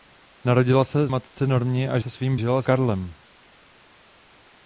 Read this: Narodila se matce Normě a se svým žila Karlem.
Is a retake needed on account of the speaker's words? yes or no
no